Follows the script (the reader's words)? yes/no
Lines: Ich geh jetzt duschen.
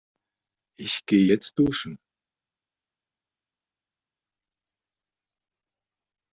yes